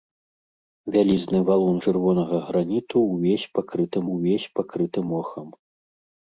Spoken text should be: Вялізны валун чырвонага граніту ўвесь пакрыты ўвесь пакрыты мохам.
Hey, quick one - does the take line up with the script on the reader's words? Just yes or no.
yes